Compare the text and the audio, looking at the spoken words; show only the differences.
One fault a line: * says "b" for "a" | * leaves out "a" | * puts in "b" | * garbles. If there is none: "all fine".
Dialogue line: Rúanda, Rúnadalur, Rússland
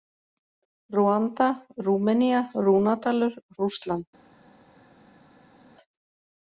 * puts in "Rúmenía"